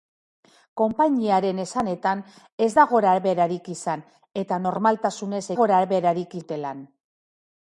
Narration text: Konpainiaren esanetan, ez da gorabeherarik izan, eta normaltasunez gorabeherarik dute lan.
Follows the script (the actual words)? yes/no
yes